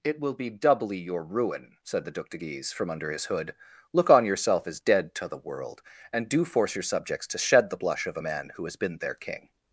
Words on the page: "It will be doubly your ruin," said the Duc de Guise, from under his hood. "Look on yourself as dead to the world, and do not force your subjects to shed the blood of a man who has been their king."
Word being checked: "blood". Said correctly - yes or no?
no